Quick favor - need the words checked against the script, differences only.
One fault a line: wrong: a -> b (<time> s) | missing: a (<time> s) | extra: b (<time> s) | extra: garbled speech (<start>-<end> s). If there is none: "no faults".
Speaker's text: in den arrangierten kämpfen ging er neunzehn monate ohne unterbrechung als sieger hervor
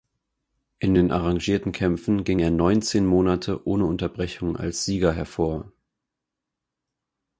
no faults